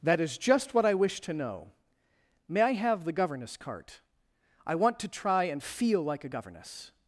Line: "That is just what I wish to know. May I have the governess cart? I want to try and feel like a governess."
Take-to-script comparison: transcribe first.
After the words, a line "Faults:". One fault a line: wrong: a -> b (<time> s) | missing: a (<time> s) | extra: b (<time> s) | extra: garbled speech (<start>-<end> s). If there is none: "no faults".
"That is just what I wish to know. May I have the governess cart? I want to try and feel like a governess."
Faults:
no faults